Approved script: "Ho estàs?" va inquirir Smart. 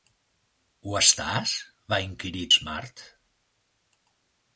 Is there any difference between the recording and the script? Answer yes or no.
no